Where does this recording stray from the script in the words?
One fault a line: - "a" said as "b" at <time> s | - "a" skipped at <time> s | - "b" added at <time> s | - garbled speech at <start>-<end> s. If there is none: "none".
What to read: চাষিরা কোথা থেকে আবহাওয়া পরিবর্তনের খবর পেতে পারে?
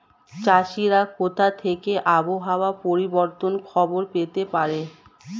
none